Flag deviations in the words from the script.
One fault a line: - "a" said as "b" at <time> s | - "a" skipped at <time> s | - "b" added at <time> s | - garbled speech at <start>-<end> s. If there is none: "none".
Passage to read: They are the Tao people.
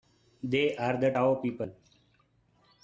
none